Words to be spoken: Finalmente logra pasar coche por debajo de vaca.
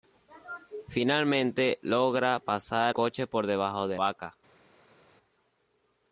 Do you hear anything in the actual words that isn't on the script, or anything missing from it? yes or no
no